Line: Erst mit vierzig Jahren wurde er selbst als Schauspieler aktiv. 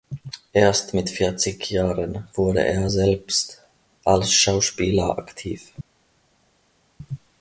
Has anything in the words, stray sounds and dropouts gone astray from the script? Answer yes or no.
no